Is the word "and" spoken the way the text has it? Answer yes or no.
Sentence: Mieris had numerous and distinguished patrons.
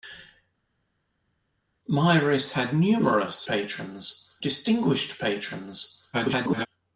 no